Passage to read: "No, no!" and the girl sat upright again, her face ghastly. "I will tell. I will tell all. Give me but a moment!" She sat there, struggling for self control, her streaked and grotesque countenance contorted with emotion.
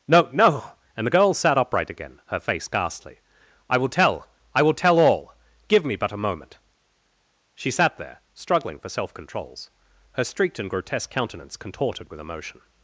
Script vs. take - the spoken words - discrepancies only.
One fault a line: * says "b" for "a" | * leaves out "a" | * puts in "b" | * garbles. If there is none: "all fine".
* says "controls" for "control"